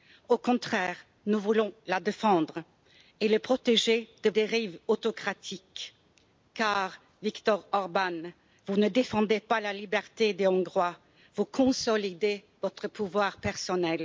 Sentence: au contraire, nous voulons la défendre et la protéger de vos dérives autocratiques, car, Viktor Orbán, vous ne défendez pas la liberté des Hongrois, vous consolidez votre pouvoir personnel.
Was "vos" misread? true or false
true